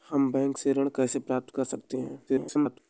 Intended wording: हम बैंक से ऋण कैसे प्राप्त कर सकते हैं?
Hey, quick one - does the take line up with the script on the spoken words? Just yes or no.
no